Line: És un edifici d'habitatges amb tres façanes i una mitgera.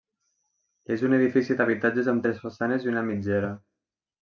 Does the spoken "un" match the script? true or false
true